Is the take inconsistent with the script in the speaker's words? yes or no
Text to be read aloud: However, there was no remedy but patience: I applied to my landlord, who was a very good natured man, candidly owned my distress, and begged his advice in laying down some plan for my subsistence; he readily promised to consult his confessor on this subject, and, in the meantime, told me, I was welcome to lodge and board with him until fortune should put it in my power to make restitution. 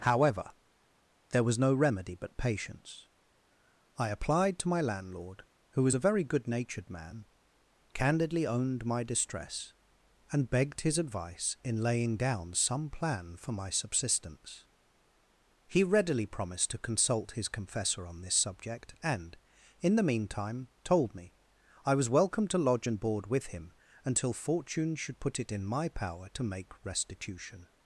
no